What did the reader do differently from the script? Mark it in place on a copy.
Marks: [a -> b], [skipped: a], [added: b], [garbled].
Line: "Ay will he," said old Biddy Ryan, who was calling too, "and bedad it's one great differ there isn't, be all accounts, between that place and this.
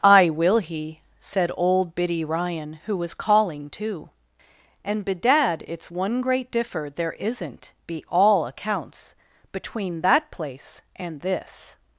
"Ay will he," said old Biddy Ryan, who was calling too, "and bedad it's one great differ there isn't, be all accounts, between that place and this.